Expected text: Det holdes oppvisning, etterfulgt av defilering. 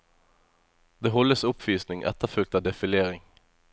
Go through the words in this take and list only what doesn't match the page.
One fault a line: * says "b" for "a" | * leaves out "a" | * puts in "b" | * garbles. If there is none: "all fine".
all fine